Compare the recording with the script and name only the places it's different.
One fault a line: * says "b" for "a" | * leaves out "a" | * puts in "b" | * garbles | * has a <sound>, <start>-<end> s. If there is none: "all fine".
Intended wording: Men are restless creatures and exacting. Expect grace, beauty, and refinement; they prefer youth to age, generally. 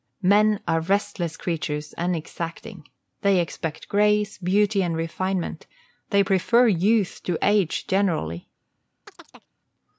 * puts in "They"
* has a chirp, 9.0-9.5 s